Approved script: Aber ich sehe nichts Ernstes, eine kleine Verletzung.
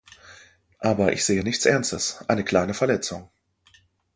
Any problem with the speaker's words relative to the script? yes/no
no